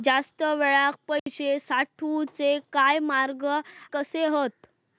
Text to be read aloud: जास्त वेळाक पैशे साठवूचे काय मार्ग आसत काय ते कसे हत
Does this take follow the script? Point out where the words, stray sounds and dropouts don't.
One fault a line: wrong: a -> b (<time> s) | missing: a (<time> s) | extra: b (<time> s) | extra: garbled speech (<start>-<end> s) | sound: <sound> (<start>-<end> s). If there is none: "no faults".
sound: dropout (1.2-1.3 s)
missing: आसत काय ते (3.5 s)